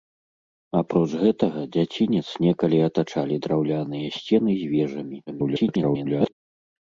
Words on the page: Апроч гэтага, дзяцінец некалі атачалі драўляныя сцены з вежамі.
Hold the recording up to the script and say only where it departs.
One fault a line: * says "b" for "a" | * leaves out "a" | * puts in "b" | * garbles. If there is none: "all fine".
* garbles